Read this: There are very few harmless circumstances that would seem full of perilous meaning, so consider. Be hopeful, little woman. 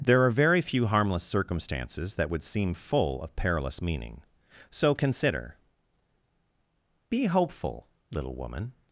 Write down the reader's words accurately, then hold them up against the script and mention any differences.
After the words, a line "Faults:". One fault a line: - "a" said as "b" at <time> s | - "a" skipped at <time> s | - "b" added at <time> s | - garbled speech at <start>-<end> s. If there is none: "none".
There are very few harmless circumstances that would seem full of perilous meaning, so consider. Be hopeful, little woman.
Faults:
none